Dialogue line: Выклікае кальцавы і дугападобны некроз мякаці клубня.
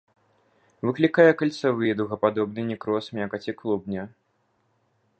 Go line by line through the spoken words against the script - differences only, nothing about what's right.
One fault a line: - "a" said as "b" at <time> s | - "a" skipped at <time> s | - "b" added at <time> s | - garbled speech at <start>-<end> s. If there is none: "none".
none